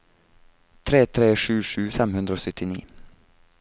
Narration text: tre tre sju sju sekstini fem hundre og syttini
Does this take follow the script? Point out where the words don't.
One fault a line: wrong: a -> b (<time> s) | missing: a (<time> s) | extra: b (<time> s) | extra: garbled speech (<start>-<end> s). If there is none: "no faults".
missing: sekstini (1.8 s)